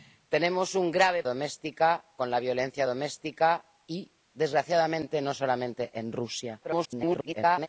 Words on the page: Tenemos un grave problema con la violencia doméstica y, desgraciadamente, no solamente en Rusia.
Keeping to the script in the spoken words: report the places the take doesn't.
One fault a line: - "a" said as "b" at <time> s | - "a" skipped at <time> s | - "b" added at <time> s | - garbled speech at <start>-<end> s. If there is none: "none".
- "problema" said as "doméstica" at 1.2 s
- garbled speech at 6.6-7.7 s